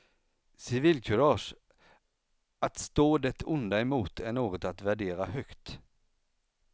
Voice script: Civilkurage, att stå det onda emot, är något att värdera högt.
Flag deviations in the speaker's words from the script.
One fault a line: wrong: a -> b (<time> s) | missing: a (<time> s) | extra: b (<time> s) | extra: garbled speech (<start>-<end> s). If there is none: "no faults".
no faults